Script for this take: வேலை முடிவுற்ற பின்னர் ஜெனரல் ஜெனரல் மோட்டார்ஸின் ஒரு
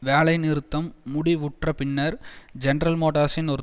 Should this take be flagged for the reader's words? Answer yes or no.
yes